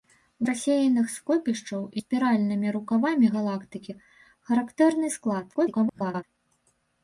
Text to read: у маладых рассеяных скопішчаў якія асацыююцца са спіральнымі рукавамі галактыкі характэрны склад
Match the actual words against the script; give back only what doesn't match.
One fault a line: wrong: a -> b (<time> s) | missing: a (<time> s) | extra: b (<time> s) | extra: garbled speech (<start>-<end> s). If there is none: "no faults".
missing: маладых (0.5 s)
missing: якія асацыююцца са (1.8 s)
extra: garbled speech (5.5-6.2 s)